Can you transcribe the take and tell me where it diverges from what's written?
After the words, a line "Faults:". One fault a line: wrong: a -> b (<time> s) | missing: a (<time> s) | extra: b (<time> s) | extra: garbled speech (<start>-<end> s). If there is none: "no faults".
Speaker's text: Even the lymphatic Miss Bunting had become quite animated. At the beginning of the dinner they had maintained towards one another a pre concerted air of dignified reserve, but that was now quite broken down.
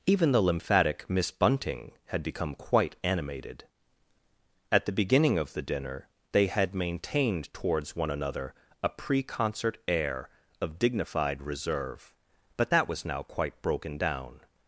Even the lymphatic Miss Bunting had become quite animated. At the beginning of the dinner they had maintained towards one another a pre concert air of dignified reserve, but that was now quite broken down.
Faults:
wrong: concerted -> concert (9.2 s)